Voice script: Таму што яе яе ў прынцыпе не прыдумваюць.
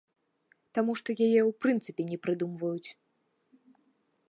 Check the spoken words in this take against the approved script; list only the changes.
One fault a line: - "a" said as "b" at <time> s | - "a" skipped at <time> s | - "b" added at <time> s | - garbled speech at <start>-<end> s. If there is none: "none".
- "яе" skipped at 1.4 s